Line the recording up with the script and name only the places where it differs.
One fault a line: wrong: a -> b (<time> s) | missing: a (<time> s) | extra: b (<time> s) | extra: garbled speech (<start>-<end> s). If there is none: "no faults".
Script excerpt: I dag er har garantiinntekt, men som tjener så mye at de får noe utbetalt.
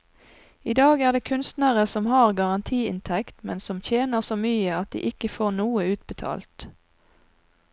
extra: det kunstnere som (1.1 s)
extra: ikke (5.1 s)